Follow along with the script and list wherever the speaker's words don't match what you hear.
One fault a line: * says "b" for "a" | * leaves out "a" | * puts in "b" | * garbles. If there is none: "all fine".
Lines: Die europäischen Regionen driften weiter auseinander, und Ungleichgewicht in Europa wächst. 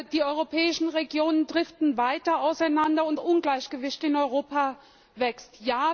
all fine